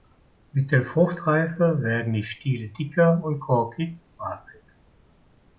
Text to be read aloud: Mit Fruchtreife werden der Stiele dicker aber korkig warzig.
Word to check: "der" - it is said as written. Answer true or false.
false